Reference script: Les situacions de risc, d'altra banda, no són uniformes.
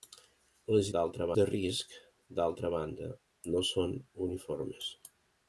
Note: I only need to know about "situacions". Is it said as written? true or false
false